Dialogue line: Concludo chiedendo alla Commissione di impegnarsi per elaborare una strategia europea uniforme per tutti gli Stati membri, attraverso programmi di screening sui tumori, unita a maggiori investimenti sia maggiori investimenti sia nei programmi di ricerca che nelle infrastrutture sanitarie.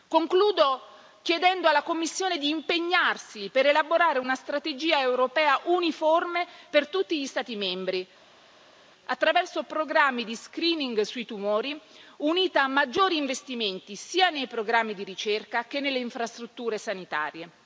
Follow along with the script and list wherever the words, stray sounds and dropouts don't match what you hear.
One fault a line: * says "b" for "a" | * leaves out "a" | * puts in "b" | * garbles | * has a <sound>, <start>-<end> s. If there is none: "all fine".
* leaves out "maggiori investimenti sia"